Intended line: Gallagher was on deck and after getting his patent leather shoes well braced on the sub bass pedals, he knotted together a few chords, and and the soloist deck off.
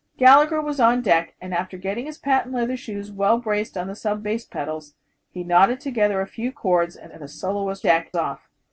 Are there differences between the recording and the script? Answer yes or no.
no